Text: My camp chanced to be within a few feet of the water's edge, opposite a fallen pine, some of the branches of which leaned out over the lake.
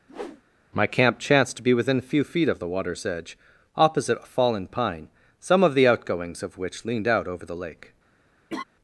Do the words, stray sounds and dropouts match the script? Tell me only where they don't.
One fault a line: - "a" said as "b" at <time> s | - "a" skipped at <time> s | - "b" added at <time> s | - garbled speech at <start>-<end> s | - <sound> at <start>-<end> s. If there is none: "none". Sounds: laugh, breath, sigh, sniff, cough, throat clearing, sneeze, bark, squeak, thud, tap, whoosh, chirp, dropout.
- whoosh at 0.1-0.4 s
- "branches" said as "outgoings" at 5.9 s
- laugh at 8.5-8.6 s